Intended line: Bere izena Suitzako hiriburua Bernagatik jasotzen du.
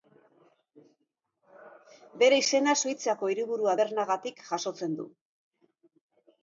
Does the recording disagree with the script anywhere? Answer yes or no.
no